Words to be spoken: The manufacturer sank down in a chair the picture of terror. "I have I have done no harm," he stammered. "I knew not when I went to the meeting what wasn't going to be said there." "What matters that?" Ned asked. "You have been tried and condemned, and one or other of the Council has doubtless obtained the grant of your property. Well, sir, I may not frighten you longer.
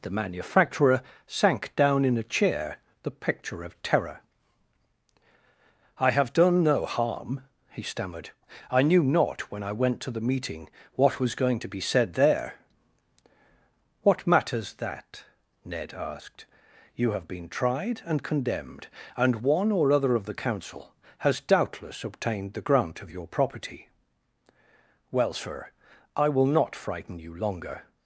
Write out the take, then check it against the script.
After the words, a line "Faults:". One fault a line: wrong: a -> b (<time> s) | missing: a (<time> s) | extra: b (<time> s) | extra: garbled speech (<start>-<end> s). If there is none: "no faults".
The manufacturer sank down in a chair the picture of terror. "I have done no harm," he stammered. "I knew not when I went to the meeting what was going to be said there." "What matters that?" Ned asked. "You have been tried and condemned, and one or other of the Council has doubtless obtained the grant of your property. Well, sir, I will not frighten you longer.
Faults:
missing: I have (6.3 s)
wrong: wasn't -> was (11.2 s)
wrong: may -> will (26.3 s)